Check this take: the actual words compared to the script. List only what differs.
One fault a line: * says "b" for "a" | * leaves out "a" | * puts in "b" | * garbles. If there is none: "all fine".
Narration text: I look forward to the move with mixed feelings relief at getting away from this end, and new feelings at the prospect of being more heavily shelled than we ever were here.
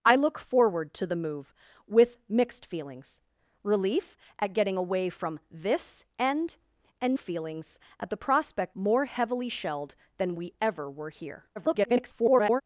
* leaves out "new"
* leaves out "of being"
* garbles